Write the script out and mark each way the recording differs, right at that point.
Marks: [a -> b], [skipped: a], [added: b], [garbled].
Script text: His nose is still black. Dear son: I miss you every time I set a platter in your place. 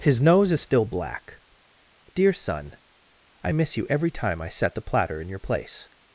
His nose is still black. Dear son: I miss you every time I set [a -> the] platter in your place.